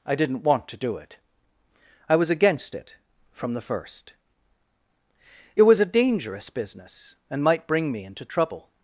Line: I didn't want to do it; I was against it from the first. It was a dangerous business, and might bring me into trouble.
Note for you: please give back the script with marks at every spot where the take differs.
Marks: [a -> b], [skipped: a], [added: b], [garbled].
I didn't want to do it; I was against it from the first. It was a dangerous business, and might bring me into trouble.